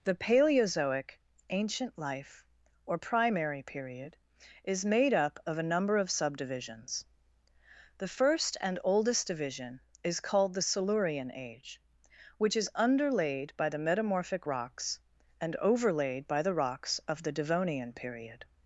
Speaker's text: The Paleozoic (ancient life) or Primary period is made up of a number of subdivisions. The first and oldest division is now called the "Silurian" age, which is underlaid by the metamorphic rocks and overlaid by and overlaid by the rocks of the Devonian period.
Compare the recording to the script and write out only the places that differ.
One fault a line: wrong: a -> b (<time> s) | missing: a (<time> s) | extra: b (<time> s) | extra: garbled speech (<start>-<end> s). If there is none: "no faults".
missing: now (10.2 s)
missing: and overlaid by (16.4 s)